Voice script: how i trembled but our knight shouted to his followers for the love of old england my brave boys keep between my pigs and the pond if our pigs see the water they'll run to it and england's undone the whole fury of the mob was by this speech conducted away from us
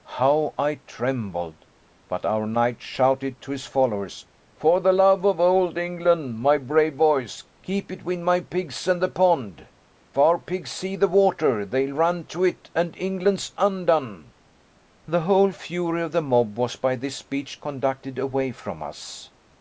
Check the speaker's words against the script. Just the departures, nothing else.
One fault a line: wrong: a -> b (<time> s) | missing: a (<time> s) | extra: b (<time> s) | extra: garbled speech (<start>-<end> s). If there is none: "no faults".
missing: if (9.7 s)